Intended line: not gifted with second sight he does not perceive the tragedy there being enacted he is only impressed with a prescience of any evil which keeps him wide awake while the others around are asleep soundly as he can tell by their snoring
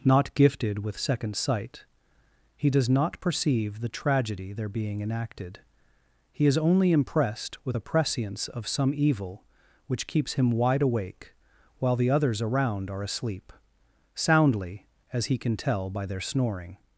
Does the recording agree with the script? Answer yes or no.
no